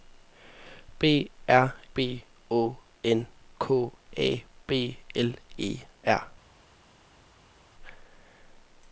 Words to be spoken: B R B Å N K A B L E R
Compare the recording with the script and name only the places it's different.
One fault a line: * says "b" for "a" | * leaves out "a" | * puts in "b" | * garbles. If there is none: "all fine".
all fine